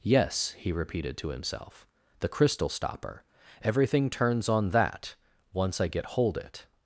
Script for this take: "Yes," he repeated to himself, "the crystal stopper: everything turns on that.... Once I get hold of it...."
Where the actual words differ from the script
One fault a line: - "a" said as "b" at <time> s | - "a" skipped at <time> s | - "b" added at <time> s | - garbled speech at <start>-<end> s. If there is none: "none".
- "of" skipped at 6.4 s